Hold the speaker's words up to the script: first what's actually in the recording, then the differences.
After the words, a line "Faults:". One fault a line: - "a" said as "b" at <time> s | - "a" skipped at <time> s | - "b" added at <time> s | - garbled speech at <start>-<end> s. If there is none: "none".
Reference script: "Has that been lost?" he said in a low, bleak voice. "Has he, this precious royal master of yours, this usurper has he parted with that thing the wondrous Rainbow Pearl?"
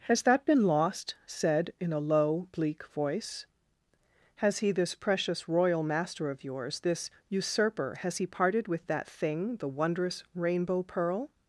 "Has that been lost?" said in a low, bleak voice. "Has he, this precious royal master of yours, this usurper has he parted with that thing the wondrous Rainbow Pearl?"
Faults:
- "he" skipped at 1.1 s